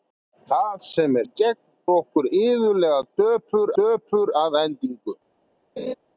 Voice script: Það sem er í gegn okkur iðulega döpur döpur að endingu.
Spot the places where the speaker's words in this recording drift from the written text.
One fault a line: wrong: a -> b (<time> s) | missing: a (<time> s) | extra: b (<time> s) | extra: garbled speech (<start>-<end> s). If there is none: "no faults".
no faults